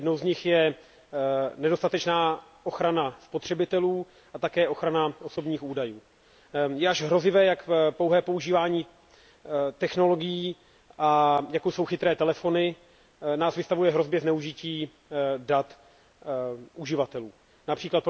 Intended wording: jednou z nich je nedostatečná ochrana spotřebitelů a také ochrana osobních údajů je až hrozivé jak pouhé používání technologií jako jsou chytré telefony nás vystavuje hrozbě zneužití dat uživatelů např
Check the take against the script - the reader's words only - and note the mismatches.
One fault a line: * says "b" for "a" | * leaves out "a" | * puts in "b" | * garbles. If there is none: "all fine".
all fine